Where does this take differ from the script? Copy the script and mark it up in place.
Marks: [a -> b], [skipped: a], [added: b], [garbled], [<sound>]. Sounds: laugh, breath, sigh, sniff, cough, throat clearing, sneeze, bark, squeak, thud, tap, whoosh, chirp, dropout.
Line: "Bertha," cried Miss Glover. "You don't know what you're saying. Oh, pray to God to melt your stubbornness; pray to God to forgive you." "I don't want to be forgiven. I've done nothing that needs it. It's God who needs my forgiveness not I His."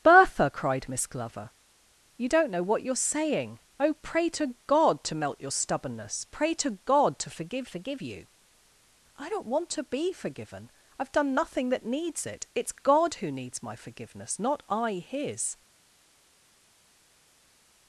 "Bertha," cried Miss Glover. "You don't know what you're saying. Oh, pray to God to melt your stubbornness; pray to God to forgive [added: forgive] you." "I don't want to be forgiven. I've done nothing that needs it. It's God who needs my forgiveness not I His."